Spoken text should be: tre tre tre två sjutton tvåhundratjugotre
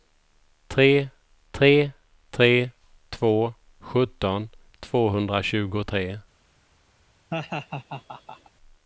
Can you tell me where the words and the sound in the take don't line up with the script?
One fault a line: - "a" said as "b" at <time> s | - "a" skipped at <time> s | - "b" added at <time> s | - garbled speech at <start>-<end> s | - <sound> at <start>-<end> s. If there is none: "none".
- laugh at 7.3-8.5 s